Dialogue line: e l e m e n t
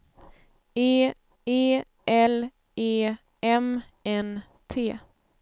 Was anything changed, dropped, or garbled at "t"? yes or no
no